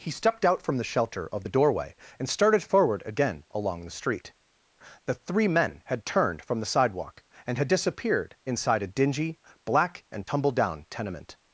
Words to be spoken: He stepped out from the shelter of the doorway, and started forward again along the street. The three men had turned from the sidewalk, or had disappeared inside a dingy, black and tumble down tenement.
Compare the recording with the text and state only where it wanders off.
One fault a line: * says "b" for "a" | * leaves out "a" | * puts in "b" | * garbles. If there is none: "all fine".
* says "and" for "or"